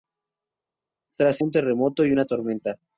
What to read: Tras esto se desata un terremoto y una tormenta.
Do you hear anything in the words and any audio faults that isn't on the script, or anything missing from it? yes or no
yes